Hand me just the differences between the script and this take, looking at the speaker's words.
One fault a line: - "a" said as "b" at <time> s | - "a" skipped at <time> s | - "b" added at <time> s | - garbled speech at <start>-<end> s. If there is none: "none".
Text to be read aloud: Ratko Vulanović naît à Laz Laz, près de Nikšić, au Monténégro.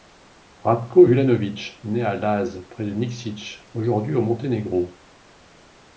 - "Laz" skipped at 2.7 s
- "aujourd'hui" added at 3.7 s